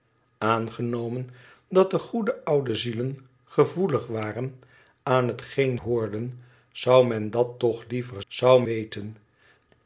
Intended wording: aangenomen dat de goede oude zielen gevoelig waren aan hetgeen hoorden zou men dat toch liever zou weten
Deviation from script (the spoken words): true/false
false